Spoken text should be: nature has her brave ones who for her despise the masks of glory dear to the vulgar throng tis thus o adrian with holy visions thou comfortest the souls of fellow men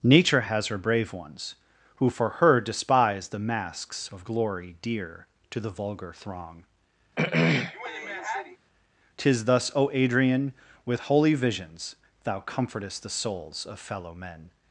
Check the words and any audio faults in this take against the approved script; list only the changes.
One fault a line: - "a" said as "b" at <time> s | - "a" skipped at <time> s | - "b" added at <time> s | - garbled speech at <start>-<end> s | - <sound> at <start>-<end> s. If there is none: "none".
- throat clearing at 7.2-8.6 s